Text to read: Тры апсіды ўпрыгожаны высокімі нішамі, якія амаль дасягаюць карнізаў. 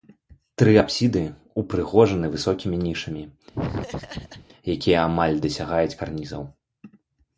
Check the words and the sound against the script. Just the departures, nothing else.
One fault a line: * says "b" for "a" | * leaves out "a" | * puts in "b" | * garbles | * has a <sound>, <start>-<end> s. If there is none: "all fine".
* has a laugh, 3.5-4.5 s